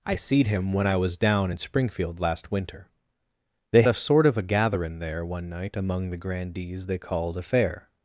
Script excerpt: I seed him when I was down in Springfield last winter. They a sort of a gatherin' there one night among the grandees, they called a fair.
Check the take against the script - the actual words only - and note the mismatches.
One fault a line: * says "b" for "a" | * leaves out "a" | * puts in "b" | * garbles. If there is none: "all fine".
all fine